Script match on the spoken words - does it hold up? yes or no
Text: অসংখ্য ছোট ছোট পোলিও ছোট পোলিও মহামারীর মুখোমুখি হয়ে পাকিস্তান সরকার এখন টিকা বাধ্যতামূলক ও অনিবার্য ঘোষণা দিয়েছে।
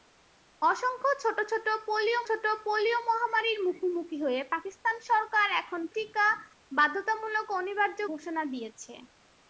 yes